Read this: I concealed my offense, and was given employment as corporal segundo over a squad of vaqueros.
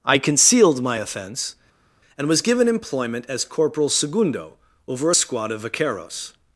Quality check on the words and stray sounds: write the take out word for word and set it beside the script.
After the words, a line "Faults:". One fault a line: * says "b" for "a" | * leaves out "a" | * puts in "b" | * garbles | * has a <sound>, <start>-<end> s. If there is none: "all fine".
I concealed my offense, and was given employment as corporal segundo over a squad of vaqueros.
Faults:
all fine